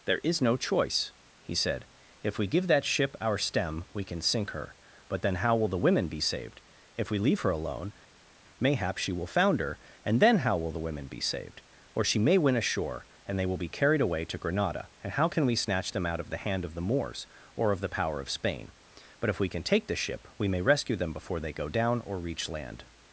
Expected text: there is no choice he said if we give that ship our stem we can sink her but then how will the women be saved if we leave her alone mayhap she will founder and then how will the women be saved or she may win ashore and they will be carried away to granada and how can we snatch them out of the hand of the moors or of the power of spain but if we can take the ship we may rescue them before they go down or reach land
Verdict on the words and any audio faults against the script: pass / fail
pass